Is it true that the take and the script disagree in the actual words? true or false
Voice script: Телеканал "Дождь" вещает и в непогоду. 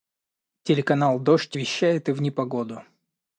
false